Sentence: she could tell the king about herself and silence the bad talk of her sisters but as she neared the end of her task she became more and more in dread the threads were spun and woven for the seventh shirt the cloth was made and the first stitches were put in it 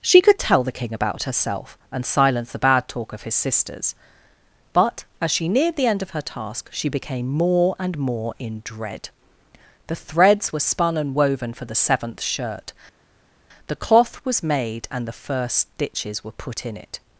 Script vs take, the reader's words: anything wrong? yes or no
yes